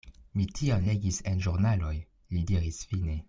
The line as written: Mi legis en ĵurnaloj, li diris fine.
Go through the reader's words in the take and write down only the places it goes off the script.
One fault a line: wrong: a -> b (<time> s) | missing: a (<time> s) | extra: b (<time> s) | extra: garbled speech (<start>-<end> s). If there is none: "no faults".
extra: tion (0.6 s)